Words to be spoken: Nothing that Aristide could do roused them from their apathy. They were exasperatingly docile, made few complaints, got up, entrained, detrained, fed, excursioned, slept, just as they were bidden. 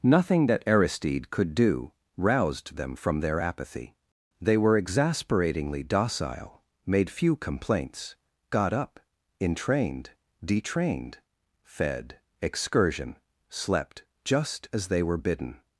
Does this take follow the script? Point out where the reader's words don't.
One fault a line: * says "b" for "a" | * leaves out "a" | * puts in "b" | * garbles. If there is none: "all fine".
* says "excursion" for "excursioned"